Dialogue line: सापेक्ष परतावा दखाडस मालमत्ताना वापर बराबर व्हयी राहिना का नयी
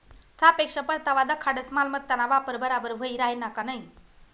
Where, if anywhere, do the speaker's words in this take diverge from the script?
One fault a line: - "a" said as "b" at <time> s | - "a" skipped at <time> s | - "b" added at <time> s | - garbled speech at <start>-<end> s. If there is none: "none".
none